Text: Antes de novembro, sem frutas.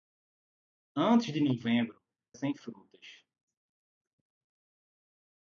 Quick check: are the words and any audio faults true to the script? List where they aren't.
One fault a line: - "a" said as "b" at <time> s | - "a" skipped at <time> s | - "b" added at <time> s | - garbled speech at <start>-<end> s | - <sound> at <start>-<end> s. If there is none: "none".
none